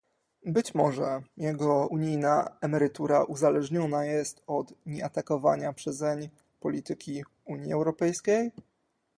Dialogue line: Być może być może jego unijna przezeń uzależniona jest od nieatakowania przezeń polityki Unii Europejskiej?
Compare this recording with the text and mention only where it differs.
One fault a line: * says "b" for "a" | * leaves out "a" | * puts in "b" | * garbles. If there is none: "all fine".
* leaves out "być może"
* says "emerytura" for "przezeń"